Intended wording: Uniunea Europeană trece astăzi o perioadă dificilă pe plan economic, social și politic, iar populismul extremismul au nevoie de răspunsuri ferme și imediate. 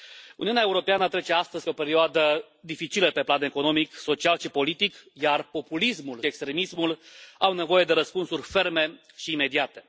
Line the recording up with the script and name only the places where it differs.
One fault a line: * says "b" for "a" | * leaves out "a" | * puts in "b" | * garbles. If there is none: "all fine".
all fine